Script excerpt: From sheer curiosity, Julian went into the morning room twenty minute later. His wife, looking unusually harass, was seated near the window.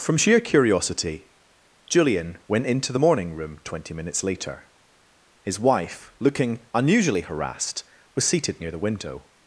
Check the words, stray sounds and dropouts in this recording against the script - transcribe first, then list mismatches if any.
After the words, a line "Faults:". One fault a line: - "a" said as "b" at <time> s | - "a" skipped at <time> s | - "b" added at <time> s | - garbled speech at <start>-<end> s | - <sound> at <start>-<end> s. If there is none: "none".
From sheer curiosity, Julian went into the morning room twenty minutes later. His wife, looking unusually harassed, was seated near the window.
Faults:
- "minute" said as "minutes" at 3.9 s
- "harass" said as "harassed" at 7.2 s